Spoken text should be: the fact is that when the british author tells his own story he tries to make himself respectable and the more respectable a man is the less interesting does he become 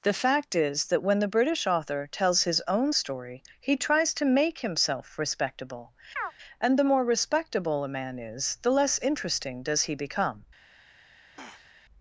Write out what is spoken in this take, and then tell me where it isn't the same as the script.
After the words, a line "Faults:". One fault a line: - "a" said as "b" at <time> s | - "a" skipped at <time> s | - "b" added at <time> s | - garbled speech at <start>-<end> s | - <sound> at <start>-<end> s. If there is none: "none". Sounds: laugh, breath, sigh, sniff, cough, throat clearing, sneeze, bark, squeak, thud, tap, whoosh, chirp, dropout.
the fact is that when the british author tells his own story he tries to make himself respectable and the more respectable a man is the less interesting does he become
Faults:
- chirp at 6.2-6.3 s
- throat clearing at 11.3-11.7 s